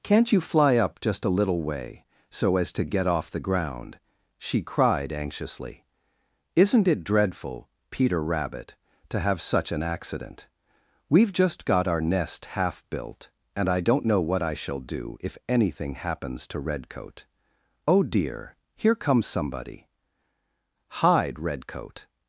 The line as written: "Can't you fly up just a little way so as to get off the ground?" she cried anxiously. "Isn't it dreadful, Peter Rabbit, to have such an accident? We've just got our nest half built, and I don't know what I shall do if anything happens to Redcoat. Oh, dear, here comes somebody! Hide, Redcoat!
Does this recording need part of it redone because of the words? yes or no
no